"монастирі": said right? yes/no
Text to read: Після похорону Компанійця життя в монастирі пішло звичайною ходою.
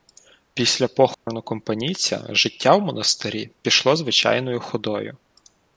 yes